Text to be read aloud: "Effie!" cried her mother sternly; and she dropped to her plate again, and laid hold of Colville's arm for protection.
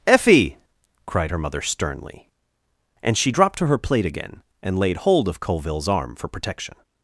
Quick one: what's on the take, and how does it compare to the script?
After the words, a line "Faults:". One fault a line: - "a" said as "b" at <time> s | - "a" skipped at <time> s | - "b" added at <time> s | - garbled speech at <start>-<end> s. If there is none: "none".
"Effie!" cried her mother sternly; and she dropped to her plate again, and laid hold of Colville's arm for protection.
Faults:
none